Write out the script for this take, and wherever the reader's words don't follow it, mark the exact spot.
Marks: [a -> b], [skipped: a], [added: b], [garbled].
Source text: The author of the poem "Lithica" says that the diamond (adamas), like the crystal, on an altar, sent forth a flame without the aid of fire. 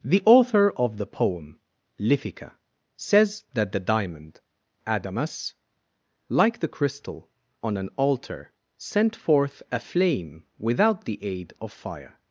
The author of the poem "Lithica" says that the diamond (adamas), like the crystal, on an altar, sent forth a flame without the aid of fire.